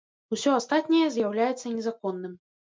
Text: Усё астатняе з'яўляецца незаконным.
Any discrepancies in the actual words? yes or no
no